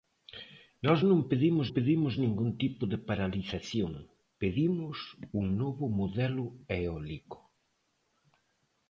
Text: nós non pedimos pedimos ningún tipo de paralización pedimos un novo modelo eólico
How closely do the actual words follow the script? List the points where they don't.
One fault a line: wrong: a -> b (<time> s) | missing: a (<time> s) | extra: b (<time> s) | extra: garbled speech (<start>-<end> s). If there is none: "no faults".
no faults